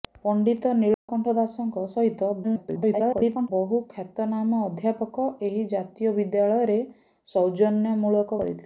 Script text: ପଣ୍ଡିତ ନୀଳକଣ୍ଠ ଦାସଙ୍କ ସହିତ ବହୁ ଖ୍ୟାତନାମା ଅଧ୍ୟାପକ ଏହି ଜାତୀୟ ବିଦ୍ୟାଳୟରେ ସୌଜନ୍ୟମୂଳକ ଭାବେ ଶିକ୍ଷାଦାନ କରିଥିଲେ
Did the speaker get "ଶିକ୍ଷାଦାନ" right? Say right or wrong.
wrong